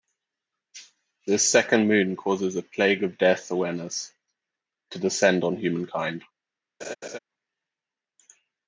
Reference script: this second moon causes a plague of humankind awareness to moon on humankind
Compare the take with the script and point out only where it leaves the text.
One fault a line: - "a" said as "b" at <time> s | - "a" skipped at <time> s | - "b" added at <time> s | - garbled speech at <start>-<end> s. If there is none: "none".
- "humankind" said as "death" at 3.2 s
- "moon" said as "descend" at 5.0 s